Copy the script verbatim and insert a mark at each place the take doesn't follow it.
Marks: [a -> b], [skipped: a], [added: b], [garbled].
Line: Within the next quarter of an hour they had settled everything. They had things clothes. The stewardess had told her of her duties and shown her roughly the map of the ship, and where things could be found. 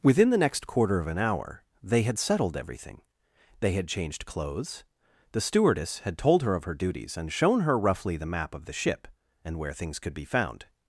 Within the next quarter of an hour they had settled everything. They had [things -> changed] clothes. The stewardess had told her of her duties and shown her roughly the map of the ship, and where things could be found.